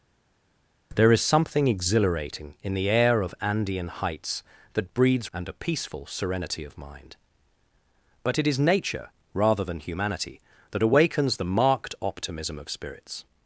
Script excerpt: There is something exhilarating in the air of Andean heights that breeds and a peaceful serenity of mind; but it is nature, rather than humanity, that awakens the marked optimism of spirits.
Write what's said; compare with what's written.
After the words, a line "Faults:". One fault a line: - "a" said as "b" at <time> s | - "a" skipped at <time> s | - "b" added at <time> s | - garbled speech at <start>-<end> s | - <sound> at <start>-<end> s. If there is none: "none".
There is something exhilarating in the air of Andean heights that breeds and a peaceful serenity of mind; but it is nature, rather than humanity, that awakens the marked optimism of spirits.
Faults:
none